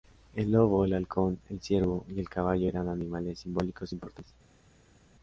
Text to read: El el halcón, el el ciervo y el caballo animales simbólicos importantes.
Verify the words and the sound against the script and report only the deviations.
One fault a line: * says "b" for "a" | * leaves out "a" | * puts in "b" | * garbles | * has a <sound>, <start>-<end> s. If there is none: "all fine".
* puts in "lobo"
* leaves out "el"
* puts in "eran"